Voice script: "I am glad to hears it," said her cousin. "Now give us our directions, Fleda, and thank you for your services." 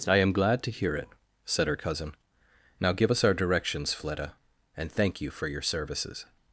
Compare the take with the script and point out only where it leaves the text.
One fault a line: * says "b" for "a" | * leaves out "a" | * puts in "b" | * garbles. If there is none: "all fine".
* says "hear" for "hears"